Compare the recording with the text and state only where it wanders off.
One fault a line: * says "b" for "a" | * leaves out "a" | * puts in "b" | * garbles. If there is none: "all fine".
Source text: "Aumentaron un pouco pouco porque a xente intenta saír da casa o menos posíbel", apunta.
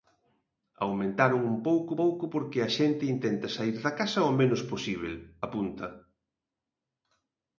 all fine